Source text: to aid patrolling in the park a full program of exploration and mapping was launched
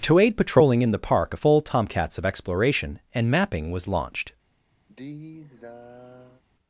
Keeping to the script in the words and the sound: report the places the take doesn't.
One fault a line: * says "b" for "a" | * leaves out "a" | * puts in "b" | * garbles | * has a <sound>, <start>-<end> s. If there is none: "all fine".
* says "tomcats" for "program"
* has a sigh, 4.9-6.4 s